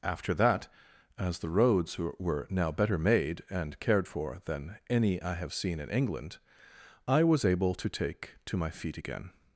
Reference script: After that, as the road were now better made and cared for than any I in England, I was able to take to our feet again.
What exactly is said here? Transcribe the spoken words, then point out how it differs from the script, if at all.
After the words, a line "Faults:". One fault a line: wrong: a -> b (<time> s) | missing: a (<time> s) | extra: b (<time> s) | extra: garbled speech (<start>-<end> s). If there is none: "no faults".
After that, as the roads were now better made and cared for than any I have seen in England, I was able to take to my feet again.
Faults:
wrong: road -> roads (1.5 s)
extra: have seen (5.3 s)
wrong: our -> my (8.6 s)